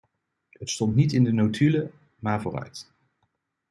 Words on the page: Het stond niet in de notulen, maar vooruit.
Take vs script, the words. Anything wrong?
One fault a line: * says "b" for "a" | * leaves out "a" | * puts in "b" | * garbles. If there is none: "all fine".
all fine